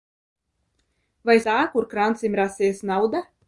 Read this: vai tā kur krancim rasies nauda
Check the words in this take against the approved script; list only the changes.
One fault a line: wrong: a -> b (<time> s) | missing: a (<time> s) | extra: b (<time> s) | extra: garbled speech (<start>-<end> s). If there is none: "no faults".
no faults